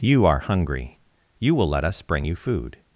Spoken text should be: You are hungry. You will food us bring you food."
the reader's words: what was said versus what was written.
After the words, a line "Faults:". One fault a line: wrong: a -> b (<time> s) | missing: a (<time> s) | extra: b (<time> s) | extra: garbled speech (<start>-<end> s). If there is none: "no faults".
You are hungry. You will let us bring you food."
Faults:
wrong: food -> let (1.7 s)